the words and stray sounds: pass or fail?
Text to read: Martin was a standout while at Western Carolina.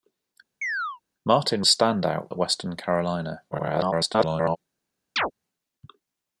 fail